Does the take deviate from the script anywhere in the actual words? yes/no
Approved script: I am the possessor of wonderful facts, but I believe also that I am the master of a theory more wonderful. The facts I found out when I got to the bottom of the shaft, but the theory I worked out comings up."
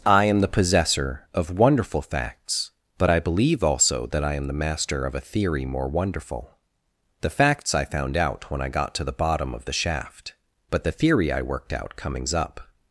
no